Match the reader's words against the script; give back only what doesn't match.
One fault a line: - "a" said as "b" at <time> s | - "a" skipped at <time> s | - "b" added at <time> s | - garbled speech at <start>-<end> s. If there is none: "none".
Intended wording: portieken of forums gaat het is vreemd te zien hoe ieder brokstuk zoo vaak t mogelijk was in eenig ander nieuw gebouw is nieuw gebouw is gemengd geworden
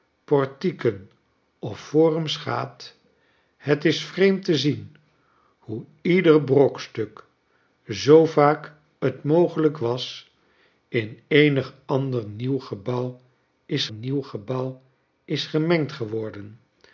none